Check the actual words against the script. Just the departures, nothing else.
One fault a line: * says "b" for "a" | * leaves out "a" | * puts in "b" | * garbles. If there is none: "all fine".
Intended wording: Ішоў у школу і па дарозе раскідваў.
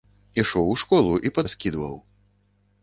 * leaves out "дарозе"